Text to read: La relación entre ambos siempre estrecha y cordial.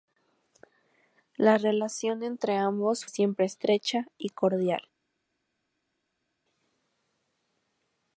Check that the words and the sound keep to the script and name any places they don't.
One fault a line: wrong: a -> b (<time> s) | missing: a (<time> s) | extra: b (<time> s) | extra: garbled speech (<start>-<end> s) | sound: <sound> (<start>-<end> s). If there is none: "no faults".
no faults